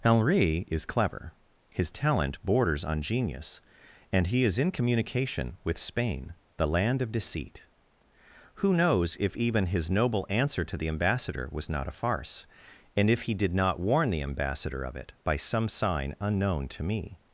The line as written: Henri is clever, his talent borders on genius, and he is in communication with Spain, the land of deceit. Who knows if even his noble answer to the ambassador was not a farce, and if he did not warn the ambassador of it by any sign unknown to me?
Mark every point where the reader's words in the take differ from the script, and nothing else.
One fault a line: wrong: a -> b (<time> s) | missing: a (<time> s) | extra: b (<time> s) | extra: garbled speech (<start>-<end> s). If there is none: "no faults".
wrong: any -> some (15.4 s)